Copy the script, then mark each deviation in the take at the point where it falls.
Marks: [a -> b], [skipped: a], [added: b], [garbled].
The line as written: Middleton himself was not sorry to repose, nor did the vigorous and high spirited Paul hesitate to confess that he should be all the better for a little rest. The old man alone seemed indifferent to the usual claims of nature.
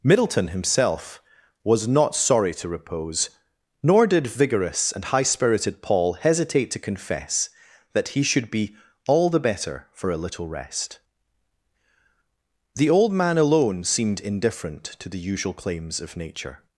Middleton himself was not sorry to repose, nor did [skipped: the] vigorous and high spirited Paul hesitate to confess that he should be all the better for a little rest. The old man alone seemed indifferent to the usual claims of nature.